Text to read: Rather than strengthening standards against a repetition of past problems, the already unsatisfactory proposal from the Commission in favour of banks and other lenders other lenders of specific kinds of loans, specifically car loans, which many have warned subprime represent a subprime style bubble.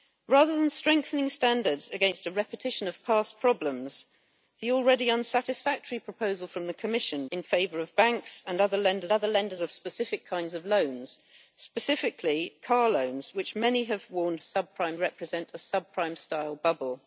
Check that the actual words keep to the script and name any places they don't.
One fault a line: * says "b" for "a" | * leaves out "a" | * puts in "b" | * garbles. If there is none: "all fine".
all fine